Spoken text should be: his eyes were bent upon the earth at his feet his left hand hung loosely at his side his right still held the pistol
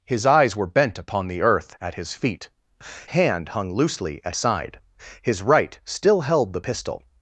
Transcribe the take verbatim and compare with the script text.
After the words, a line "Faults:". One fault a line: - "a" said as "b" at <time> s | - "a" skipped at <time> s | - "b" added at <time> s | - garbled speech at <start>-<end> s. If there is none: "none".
his eyes were bent upon the earth at his feet hand hung loosely at side his right still held the pistol
Faults:
- "his left" skipped at 2.5 s
- "his" skipped at 4.4 s